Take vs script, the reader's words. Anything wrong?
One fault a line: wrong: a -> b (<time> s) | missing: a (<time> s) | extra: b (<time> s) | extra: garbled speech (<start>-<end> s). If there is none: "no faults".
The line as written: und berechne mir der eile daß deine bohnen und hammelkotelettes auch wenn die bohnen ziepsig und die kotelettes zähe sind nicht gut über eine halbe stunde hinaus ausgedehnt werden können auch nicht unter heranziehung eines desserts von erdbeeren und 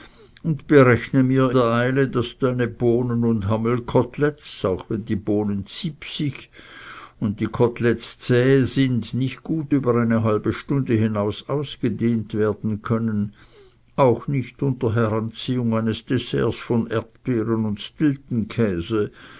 no faults